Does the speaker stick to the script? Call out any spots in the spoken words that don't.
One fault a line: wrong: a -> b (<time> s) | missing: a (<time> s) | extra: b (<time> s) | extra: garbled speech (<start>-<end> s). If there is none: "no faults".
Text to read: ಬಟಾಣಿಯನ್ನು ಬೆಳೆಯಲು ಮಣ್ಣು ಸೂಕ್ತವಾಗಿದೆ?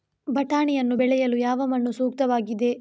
extra: ಯಾವ (1.4 s)